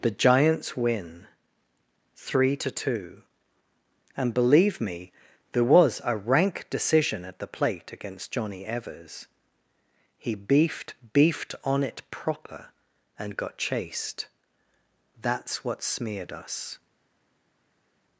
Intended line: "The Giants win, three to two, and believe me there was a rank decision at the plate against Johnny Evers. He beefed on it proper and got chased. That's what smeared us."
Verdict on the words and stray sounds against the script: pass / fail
fail